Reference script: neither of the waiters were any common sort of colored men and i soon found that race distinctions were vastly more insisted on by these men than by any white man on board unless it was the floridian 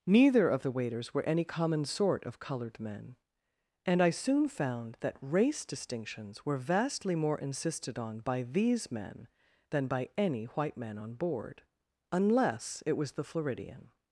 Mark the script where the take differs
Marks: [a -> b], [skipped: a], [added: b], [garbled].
neither of the waiters were any common sort of colored men and i soon found that race distinctions were vastly more insisted on by these men than by any white man on board unless it was the floridian